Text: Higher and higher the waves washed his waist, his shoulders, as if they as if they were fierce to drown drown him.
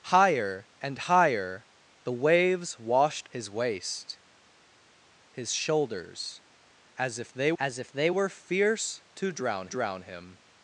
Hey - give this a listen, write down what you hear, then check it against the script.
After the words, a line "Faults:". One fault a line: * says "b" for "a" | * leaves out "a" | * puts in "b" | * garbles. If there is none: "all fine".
Higher and higher the waves washed his waist, his shoulders, as if they as if they were fierce to drown drown him.
Faults:
all fine